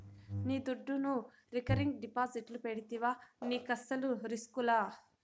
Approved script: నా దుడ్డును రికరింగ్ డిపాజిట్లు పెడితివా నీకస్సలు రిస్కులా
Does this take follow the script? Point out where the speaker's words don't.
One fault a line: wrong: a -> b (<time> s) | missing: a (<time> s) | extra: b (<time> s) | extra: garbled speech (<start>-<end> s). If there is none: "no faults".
wrong: నా -> నీ (0.5 s)